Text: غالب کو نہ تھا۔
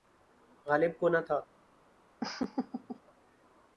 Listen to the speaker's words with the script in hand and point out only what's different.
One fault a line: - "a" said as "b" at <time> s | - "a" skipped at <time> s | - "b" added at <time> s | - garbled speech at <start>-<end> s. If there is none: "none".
none